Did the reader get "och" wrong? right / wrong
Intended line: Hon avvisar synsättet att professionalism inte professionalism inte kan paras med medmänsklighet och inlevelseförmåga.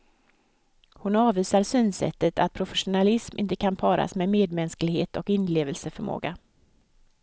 right